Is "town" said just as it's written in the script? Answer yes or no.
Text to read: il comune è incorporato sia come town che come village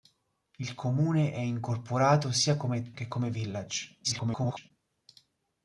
no